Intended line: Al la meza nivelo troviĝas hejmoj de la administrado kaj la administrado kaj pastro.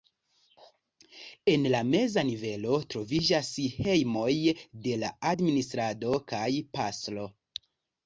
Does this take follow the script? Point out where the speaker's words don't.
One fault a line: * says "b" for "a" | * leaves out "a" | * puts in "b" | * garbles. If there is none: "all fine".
* says "En" for "Al"
* leaves out "la administrado kaj"